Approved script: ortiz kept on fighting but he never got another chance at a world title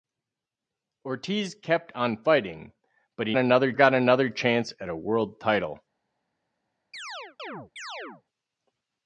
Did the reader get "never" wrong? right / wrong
wrong